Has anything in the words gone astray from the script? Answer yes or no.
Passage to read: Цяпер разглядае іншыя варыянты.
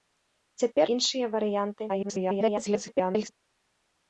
yes